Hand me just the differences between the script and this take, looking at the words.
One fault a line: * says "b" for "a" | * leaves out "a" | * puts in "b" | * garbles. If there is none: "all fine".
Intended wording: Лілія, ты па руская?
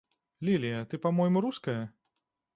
* puts in "мойму"